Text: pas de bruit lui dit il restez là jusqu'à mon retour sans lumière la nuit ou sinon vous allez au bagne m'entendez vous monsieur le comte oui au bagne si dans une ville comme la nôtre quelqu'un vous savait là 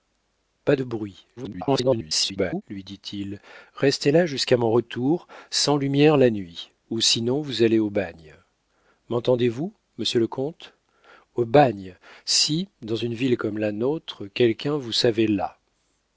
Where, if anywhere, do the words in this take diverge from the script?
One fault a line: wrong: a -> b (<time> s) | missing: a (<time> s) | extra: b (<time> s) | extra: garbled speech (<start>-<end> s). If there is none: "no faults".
extra: garbled speech (1.4-2.6 s)
missing: oui (10.7 s)